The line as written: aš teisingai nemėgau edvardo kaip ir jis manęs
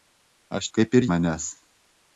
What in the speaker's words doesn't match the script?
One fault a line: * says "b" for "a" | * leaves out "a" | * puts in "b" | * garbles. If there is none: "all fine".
* leaves out "teisingai nemėgau edvardo"
* leaves out "jis"